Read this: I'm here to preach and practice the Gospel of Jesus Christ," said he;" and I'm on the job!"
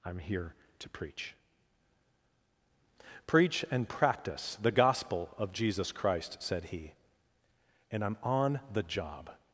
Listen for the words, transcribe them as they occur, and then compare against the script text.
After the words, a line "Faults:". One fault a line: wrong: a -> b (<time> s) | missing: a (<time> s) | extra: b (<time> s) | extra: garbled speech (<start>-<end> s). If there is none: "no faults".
I'm here to preach preach and practice the Gospel of Jesus Christ," said he;" and I'm on the job!"
Faults:
extra: preach (3.3 s)